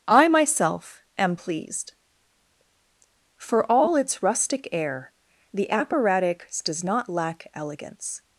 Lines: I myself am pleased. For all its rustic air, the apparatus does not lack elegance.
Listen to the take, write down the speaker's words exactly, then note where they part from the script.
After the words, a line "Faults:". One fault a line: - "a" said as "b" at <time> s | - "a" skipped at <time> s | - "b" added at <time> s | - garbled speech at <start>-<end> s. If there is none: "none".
I myself am pleased. For all its rustic air, the apparatus does not lack elegance.
Faults:
none